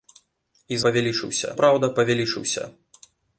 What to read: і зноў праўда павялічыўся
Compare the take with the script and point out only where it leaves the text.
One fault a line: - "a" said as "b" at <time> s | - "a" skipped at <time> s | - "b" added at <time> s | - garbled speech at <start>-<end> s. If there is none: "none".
- "зноў" said as "павялічыўся" at 0.9 s